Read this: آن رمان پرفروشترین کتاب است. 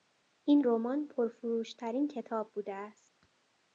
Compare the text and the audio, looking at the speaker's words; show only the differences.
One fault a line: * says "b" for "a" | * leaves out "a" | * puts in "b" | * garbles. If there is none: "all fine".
* says "این" for "آن"
* puts in "بوده"